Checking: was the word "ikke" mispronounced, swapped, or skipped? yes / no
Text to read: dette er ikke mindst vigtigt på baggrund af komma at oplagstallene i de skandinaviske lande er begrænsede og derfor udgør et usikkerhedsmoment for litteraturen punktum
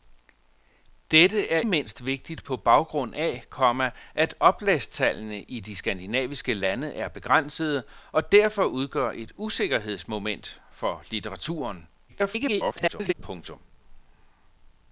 yes